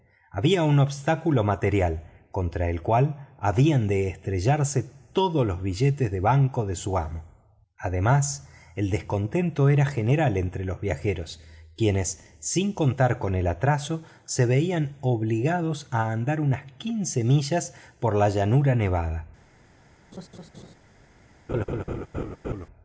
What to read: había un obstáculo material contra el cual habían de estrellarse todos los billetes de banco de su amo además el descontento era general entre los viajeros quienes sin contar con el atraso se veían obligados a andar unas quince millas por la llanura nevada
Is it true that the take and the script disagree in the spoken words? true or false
false